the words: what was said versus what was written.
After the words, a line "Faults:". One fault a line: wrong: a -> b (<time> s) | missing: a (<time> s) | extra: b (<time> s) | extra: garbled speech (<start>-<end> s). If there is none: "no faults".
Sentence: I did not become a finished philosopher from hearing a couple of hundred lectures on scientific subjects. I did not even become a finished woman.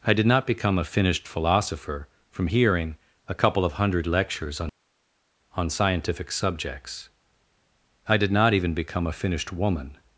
I did not become a finished philosopher from hearing a couple of hundred lectures on on scientific subjects. I did not even become a finished woman.
Faults:
extra: on (5.6 s)